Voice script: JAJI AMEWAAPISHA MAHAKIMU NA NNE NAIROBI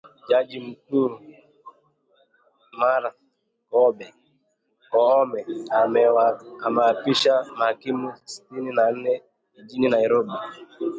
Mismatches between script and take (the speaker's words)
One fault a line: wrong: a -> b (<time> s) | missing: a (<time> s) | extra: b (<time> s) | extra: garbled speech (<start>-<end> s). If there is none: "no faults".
extra: MKUU MARTHA KOOME (0.7 s)
extra: SITINI (8.3 s)
extra: JIJINI (9.6 s)